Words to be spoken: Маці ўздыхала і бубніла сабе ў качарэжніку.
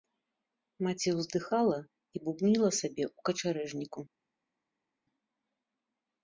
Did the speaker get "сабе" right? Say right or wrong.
right